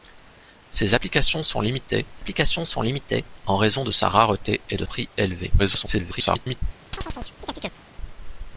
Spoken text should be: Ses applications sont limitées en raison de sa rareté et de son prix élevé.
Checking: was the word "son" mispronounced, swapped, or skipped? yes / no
yes